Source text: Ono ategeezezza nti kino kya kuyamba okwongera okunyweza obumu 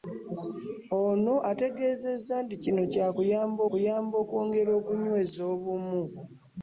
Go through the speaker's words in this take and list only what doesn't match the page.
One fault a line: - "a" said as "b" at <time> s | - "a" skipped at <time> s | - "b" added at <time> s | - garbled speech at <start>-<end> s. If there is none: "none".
- "kuyamba" added at 3.7 s